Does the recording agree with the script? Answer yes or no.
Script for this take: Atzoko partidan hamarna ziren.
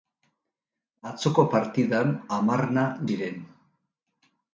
yes